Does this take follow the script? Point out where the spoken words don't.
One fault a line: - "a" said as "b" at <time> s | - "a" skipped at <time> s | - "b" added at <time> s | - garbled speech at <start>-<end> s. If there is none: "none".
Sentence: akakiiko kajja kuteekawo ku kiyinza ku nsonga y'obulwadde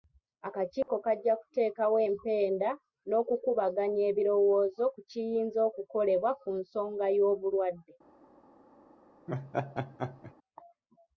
- "empenda n'okukubaganya ebirowoozo" added at 2.1 s
- "okukolebwa" added at 5.7 s